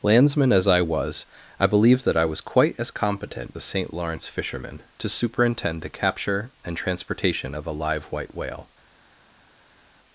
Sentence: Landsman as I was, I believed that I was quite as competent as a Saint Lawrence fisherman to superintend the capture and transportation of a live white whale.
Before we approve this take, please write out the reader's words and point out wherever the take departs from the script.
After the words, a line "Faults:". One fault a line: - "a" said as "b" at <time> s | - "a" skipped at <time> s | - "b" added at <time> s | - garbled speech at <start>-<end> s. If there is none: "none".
Landsman as I was, I believed that I was quite as competent a Saint Lawrence fisherman to superintend the capture and transportation of a live white whale.
Faults:
- "as" skipped at 3.5 s